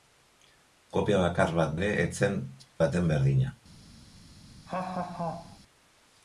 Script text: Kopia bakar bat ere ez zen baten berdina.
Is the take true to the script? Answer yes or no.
yes